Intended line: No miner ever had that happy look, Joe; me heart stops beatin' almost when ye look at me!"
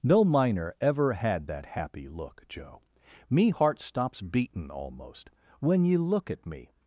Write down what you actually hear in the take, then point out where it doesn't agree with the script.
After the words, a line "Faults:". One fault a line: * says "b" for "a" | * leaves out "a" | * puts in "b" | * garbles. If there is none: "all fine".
No miner ever had that happy look, Joe; me heart stops beatin' almost when ye look at me!"
Faults:
all fine